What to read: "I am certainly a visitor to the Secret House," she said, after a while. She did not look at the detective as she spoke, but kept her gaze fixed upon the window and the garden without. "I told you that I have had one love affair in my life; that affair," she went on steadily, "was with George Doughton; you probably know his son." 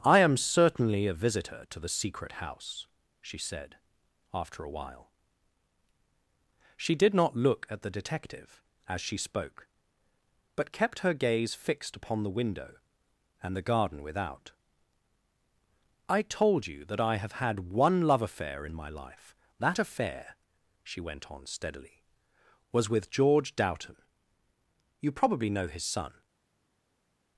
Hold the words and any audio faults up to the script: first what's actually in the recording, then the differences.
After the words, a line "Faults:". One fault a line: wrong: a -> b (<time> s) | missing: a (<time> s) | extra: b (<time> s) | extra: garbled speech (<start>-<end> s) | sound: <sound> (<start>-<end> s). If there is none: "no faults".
"I am certainly a visitor to the Secret House," she said, after a while. She did not look at the detective as she spoke, but kept her gaze fixed upon the window and the garden without. "I told you that I have had one love affair in my life; that affair," she went on steadily, "was with George Doughton; you probably know his son."
Faults:
no faults